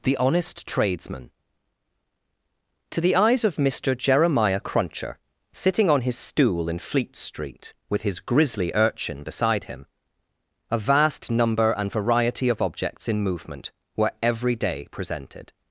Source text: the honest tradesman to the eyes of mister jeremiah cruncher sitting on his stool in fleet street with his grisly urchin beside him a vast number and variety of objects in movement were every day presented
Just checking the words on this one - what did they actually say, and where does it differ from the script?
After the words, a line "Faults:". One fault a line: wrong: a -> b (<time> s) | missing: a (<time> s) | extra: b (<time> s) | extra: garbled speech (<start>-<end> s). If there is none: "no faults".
the honest tradesman to the eyes of mister jeremiah cruncher sitting on his stool in fleet street with his grisly urchin beside him a vast number and variety of objects in movement were every day presented
Faults:
no faults